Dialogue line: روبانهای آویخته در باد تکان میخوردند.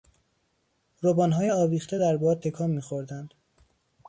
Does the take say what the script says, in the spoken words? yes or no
yes